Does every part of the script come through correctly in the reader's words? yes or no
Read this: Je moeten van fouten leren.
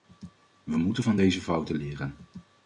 no